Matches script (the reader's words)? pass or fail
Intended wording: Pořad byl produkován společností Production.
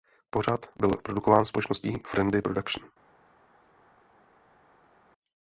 fail